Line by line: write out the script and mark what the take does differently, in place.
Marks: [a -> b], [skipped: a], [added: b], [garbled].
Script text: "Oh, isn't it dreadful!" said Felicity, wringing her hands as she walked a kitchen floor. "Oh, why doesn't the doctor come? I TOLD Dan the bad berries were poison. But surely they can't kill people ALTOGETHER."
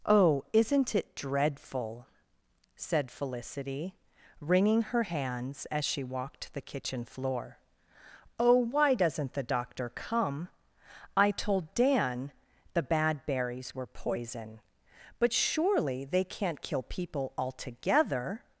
"Oh, isn't it dreadful!" said Felicity, wringing her hands as she walked [a -> the] kitchen floor. "Oh, why doesn't the doctor come? I TOLD Dan the bad berries were poison. But surely they can't kill people ALTOGETHER."